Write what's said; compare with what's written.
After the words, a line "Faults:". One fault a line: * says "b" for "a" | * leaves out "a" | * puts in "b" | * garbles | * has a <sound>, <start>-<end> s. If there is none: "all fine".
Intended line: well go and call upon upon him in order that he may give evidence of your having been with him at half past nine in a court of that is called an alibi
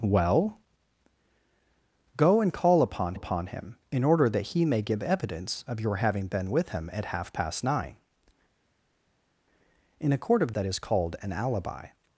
well go and call upon upon him in order that he may give evidence of your having been with him at half past nine in a court of that is called an alibi
Faults:
all fine